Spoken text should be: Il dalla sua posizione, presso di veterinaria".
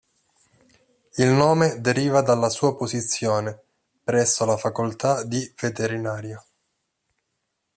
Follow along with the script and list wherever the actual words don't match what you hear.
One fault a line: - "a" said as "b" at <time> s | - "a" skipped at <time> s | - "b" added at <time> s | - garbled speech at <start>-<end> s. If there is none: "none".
- "nome deriva" added at 1.3 s
- "la Facoltà" added at 4.5 s